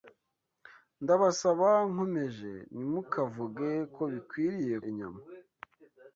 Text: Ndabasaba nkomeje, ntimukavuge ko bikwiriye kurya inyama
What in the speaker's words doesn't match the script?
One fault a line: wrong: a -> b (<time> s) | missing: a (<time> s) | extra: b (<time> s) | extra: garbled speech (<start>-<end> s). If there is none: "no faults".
missing: kurya (4.8 s)